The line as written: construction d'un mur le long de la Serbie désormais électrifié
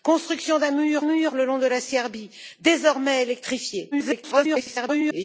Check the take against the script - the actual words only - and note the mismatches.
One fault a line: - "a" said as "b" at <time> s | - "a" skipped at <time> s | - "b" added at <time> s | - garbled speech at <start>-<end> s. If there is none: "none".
- "mur" added at 1.0 s
- garbled speech at 3.9-5.2 s